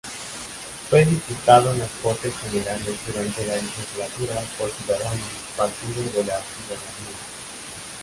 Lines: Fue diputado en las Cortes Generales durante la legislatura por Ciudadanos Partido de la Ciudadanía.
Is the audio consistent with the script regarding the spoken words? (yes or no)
yes